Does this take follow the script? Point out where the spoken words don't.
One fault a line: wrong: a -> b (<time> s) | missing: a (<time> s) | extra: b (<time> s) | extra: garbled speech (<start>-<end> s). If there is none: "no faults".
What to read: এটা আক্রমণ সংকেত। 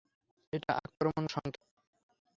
no faults